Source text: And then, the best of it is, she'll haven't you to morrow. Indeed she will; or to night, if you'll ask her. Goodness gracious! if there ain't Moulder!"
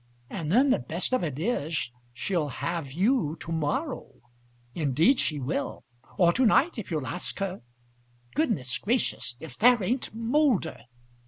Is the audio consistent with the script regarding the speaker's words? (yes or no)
no